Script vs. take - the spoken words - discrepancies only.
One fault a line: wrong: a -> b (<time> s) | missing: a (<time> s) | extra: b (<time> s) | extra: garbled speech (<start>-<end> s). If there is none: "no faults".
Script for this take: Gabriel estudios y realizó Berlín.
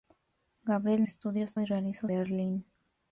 no faults